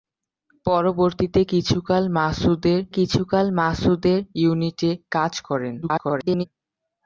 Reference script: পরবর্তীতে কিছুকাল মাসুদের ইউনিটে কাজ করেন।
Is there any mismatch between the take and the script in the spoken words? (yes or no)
yes